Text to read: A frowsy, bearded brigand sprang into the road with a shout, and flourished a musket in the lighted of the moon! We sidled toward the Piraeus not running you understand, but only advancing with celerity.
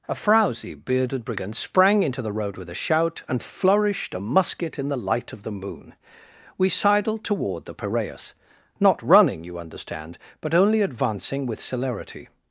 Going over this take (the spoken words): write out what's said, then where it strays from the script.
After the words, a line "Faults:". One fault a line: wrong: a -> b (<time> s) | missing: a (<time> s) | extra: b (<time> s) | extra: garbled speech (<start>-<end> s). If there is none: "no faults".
A frowsy, bearded brigand sprang into the road with a shout, and flourished a musket in the light of the moon! We sidled toward the Piraeus not running you understand, but only advancing with celerity.
Faults:
wrong: lighted -> light (5.0 s)